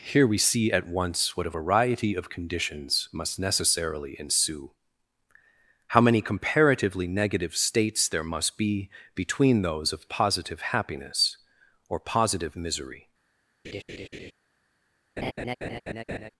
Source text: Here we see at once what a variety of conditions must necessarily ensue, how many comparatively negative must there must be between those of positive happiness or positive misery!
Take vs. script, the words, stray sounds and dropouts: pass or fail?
fail